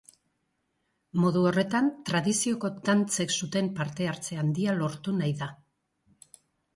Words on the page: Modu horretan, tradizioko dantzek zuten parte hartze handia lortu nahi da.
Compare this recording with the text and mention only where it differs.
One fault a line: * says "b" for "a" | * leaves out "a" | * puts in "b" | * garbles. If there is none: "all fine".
all fine